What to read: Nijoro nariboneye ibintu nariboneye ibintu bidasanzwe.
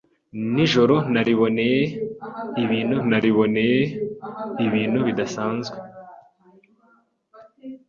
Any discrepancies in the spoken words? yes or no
no